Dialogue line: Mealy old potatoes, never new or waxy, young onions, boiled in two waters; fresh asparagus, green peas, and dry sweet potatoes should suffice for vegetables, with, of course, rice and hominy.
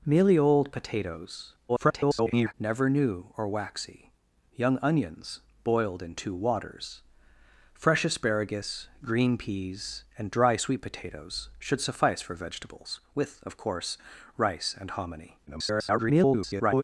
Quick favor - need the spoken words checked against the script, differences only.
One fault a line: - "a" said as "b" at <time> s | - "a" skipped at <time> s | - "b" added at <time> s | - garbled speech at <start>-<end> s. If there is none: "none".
- garbled speech at 1.7-2.5 s
- garbled speech at 15.5-16.8 s